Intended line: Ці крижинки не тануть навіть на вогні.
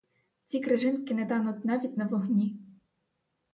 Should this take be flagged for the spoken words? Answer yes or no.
no